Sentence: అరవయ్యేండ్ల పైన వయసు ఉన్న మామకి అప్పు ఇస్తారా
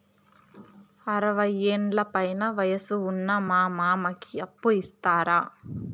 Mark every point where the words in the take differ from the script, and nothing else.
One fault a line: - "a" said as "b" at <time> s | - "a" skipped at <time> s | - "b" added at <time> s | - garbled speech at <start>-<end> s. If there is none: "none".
- "మా" added at 3.5 s